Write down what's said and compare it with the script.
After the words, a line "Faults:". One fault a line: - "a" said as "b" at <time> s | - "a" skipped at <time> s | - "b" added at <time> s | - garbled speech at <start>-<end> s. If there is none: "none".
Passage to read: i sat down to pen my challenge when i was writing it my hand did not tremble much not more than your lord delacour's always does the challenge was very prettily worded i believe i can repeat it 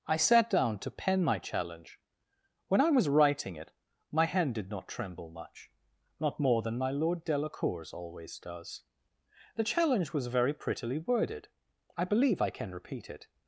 i sat down to pen my challenge when i was writing it my hand did not tremble much not more than my lord delacour's always does the challenge was very prettily worded i believe i can repeat it
Faults:
- "your" said as "my" at 6.8 s